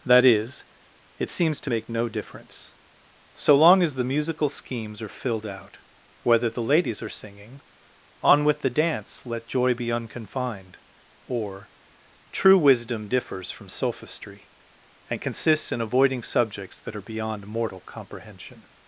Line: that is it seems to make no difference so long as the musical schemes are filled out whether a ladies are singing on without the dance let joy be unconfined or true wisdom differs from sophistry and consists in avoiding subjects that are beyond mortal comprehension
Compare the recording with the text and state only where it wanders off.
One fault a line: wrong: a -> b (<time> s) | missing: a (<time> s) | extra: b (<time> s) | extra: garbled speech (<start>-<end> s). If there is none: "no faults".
wrong: a -> the (6.5 s)
wrong: without -> with (8.4 s)